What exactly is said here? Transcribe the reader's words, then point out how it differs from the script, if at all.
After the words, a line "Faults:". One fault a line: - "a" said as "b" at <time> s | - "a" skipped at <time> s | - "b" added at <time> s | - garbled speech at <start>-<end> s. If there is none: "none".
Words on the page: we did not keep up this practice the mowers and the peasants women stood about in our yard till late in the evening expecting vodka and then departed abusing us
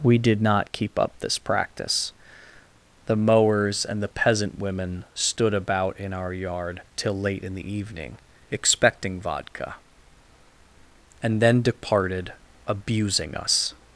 we did not keep up this practice the mowers and the peasant women stood about in our yard till late in the evening expecting vodka and then departed abusing us
Faults:
- "peasants" said as "peasant" at 4.1 s